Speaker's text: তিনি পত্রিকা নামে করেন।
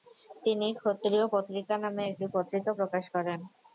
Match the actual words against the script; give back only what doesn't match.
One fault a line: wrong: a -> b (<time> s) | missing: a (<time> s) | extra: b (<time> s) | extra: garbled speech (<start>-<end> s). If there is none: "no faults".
extra: ক্ষত্রিয় (0.8 s)
extra: একটি পত্রিকা প্রকাশ (2.1 s)